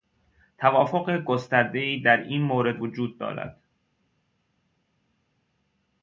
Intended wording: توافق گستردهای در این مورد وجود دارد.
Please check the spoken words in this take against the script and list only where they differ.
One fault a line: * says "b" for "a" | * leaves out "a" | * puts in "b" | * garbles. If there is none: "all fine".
all fine